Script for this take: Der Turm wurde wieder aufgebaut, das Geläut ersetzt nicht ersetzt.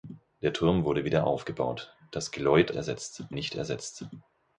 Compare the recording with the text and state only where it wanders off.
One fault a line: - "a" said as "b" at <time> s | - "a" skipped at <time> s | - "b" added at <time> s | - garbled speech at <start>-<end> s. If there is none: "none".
none